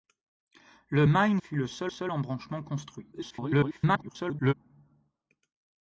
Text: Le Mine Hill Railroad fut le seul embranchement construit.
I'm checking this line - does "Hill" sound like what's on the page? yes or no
no